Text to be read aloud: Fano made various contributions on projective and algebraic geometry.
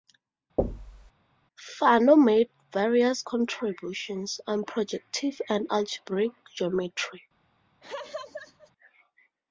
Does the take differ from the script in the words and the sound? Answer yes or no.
yes